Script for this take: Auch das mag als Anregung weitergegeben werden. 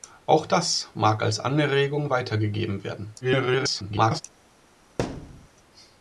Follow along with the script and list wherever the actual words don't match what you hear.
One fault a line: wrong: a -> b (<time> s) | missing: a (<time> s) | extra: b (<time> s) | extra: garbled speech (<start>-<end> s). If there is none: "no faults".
extra: garbled speech (3.2-4.2 s)